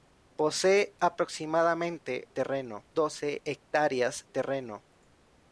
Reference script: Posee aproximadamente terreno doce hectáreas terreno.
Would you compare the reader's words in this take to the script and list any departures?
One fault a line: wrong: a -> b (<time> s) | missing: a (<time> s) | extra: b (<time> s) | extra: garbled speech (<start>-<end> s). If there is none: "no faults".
no faults